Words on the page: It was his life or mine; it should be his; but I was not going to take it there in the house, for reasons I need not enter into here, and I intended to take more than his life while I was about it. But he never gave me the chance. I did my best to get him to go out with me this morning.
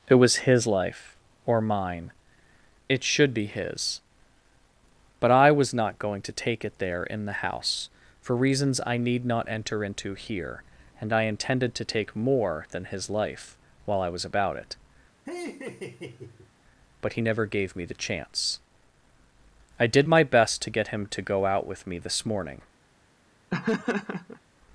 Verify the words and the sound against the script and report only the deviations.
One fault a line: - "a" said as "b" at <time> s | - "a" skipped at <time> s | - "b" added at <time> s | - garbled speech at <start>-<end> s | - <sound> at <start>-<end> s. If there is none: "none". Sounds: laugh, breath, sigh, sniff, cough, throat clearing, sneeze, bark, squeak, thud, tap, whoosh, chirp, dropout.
- laugh at 15.3-16.5 s
- laugh at 23.5-24.4 s